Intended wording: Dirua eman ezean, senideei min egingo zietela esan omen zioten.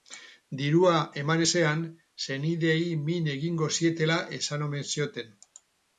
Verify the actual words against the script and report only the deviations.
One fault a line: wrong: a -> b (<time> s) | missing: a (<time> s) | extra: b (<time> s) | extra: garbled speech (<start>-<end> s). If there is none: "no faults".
no faults